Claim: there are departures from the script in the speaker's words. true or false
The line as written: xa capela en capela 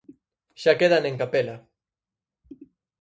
true